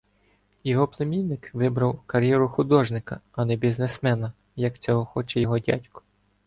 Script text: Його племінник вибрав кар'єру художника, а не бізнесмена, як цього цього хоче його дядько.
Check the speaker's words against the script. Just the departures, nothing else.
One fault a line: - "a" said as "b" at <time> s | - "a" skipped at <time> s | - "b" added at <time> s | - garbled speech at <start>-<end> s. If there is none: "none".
- "цього" skipped at 5.0 s